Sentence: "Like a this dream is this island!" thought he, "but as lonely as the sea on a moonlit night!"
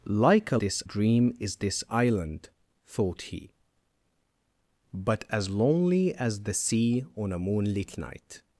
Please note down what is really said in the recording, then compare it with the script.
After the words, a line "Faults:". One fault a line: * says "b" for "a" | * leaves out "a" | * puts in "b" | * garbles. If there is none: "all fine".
"Like a this dream is this island!" thought he, "but as lonely as the sea on a moonlit night!"
Faults:
all fine